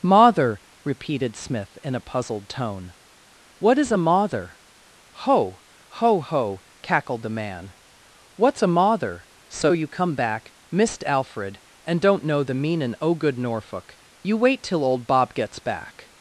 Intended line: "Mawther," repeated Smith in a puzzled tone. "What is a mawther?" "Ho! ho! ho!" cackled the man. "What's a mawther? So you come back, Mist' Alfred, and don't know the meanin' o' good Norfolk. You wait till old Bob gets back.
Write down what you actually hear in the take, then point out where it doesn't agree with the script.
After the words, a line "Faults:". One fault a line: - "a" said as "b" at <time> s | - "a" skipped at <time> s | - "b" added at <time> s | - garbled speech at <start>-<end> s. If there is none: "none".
"Mawther," repeated Smith in a puzzled tone. "What is a mawther?" "Ho! ho! ho!" cackled the man. "What's a mawther? So you come back, Mist' Alfred, and don't know the meanin' o' good Norfolk. You wait till old Bob gets back.
Faults:
none